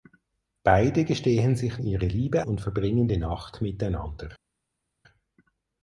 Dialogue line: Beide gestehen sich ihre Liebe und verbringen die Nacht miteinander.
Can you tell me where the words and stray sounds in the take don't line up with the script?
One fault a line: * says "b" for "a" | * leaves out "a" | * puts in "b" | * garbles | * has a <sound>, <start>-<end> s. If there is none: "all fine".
all fine